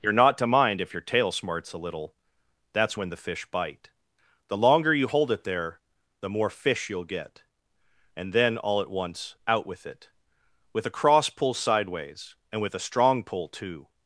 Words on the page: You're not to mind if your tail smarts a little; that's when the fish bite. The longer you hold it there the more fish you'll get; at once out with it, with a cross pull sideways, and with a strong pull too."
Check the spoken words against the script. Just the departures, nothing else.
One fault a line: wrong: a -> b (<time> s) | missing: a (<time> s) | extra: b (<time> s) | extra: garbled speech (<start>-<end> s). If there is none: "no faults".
extra: and then all (8.1 s)